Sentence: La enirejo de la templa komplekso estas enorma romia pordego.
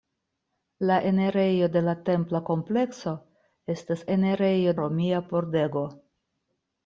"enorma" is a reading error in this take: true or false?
true